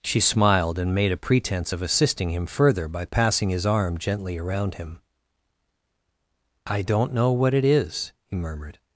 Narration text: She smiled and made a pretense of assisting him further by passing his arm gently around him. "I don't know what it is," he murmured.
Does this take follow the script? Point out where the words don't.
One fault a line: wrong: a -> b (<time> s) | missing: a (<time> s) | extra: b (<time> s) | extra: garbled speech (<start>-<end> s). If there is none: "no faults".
no faults